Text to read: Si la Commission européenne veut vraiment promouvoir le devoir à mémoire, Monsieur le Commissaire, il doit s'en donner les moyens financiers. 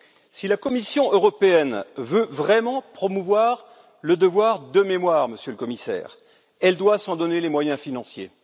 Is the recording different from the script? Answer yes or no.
yes